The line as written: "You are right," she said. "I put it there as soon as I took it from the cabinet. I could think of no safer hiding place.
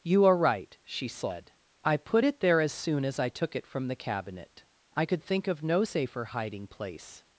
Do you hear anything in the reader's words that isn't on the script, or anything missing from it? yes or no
no